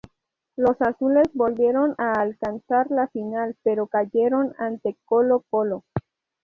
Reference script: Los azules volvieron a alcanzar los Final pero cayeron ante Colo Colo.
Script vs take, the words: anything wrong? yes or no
yes